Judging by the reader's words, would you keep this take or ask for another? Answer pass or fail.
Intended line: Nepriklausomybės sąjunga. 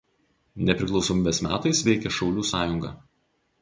fail